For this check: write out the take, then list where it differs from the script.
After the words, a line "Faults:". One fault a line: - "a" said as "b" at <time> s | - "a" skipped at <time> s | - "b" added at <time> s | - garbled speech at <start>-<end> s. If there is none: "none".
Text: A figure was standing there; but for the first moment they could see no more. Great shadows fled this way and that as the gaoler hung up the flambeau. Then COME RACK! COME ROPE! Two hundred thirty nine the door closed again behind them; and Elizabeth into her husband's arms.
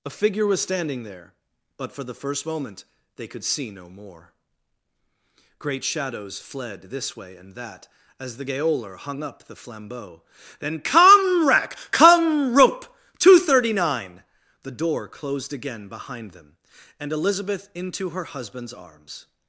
A figure was standing there; but for the first moment they could see no more. Great shadows fled this way and that as the gaoler hung up the flambeau. Then COME RACK! COME ROPE! Two hundred thirty nine the door closed again behind them; and Elizabeth into her husband's arms.
Faults:
none